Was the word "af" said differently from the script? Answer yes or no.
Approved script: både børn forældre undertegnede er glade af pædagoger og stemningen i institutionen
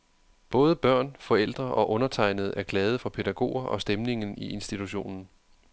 yes